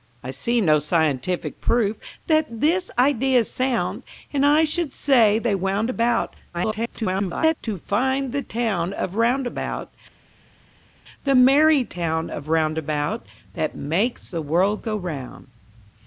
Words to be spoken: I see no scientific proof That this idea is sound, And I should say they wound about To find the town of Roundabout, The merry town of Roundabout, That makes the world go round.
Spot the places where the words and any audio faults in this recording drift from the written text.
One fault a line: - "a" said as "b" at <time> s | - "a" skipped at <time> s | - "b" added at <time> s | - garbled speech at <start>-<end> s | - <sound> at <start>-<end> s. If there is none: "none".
- garbled speech at 6.5-7.6 s